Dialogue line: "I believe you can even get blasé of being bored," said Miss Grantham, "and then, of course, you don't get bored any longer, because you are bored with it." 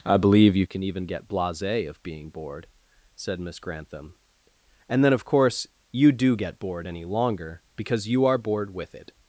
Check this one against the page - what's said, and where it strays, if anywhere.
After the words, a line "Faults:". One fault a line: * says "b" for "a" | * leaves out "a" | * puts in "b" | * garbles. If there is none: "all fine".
"I believe you can even get blasé of being bored," said Miss Grantham, "and then, of course, you do get bored any longer, because you are bored with it."
Faults:
* says "do" for "don't"